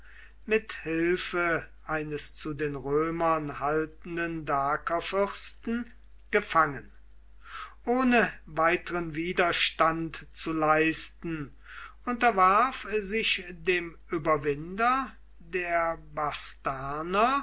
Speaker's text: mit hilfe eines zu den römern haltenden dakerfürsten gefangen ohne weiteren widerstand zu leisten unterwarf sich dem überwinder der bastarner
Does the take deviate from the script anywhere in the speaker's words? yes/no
no